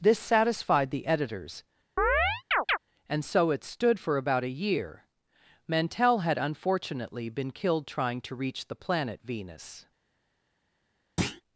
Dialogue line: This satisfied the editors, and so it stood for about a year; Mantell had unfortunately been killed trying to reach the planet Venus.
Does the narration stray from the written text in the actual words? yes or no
no